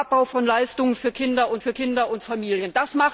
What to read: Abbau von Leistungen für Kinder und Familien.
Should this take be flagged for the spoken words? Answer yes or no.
yes